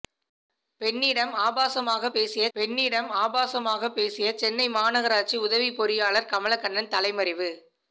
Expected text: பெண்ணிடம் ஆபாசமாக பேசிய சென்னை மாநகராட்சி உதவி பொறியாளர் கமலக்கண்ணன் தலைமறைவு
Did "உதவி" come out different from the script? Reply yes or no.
no